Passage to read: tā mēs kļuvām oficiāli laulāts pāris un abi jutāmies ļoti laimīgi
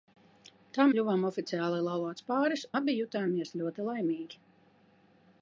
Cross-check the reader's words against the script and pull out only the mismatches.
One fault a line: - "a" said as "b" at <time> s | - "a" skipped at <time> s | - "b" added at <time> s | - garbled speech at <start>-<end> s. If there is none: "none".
- "mēs" skipped at 0.8 s
- "un" skipped at 2.7 s